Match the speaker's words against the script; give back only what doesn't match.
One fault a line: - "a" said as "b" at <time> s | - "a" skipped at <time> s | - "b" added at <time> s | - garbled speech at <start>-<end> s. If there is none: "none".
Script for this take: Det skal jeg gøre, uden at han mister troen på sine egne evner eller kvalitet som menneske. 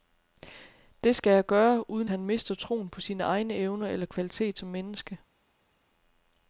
- "at" skipped at 2.1 s